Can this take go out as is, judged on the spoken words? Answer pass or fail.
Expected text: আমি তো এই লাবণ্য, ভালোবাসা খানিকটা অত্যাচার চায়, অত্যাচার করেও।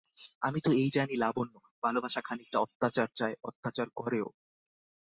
fail